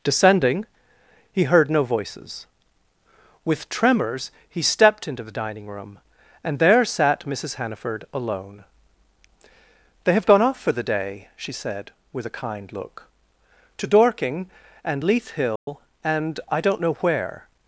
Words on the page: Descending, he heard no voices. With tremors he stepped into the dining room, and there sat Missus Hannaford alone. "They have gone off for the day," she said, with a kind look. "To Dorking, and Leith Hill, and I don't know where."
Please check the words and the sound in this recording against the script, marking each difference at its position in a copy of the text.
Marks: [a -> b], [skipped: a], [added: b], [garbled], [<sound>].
Descending, he heard no voices. With tremors he stepped into the dining room, and there sat Missus Hannaford alone. "They have gone off for the day," she said, with a kind look. "To Dorking, and Leith Hill, [dropout] and I don't know where."